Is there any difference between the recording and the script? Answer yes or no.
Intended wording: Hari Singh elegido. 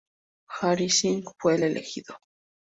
yes